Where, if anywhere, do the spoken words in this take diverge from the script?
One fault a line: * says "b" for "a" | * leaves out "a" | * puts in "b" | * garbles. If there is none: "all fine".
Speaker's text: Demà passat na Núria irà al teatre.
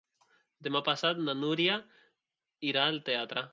all fine